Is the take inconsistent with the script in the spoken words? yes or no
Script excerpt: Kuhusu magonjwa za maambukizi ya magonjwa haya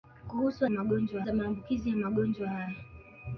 no